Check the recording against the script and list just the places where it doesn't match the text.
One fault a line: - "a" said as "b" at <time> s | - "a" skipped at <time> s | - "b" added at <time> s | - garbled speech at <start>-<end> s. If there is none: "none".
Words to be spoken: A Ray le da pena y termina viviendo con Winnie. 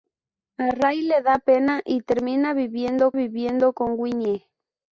- "viviendo" added at 3.2 s